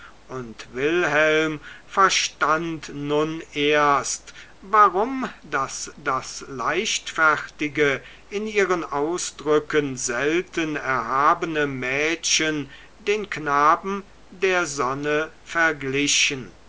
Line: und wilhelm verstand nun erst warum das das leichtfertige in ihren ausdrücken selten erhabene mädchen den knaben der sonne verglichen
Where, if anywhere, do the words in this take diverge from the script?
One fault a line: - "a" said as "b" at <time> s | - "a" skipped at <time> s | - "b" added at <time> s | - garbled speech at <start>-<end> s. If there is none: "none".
none